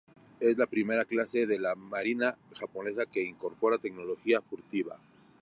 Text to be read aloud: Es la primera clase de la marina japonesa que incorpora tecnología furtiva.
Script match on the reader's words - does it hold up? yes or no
yes